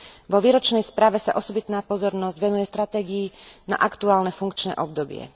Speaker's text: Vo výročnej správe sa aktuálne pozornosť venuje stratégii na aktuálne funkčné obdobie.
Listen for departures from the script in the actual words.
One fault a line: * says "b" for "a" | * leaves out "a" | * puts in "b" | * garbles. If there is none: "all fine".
* says "osobitná" for "aktuálne"